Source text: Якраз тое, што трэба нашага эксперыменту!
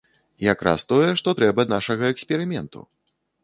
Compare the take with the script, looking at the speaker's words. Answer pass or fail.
pass